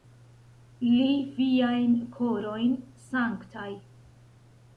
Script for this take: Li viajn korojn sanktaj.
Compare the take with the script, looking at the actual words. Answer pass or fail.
pass